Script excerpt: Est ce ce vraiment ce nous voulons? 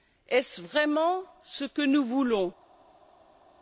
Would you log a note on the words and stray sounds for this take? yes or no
yes